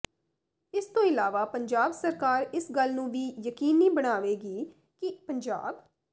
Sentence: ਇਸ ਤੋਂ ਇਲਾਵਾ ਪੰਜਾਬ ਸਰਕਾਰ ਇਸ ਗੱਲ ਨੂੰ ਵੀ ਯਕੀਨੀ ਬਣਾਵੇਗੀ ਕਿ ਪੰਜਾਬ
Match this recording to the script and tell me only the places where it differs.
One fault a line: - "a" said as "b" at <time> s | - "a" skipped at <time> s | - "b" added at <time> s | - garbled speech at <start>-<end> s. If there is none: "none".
none